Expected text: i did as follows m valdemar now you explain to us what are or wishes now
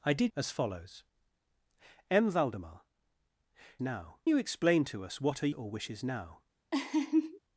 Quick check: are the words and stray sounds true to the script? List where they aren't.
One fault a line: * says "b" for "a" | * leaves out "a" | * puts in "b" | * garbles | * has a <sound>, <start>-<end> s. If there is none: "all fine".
* has a laugh, 6.7-7.4 s